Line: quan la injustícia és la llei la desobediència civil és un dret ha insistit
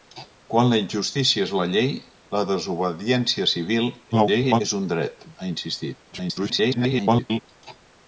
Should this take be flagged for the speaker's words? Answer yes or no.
yes